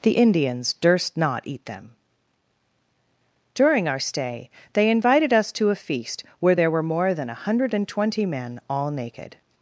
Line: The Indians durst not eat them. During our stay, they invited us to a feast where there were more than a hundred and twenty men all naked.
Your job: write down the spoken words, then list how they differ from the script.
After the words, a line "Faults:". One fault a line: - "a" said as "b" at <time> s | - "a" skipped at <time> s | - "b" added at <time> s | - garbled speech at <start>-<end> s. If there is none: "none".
The Indians durst not eat them. During our stay, they invited us to a feast where there were more than a hundred and twenty men all naked.
Faults:
none